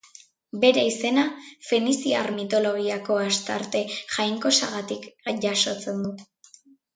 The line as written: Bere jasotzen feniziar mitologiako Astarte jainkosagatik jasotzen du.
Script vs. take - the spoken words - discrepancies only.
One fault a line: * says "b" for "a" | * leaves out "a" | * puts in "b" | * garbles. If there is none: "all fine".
* says "izena" for "jasotzen"